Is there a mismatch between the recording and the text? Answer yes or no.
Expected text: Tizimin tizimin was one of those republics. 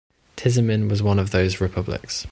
yes